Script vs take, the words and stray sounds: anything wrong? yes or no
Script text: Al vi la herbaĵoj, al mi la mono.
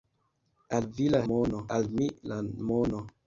yes